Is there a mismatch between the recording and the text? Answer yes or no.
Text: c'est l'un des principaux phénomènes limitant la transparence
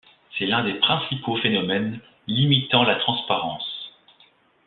no